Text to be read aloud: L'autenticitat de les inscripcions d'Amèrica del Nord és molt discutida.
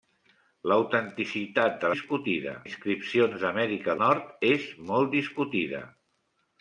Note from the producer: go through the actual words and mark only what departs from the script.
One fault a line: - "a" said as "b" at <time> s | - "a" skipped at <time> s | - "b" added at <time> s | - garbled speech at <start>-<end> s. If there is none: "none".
- "les" said as "discutida" at 1.9 s
- "del" skipped at 4.0 s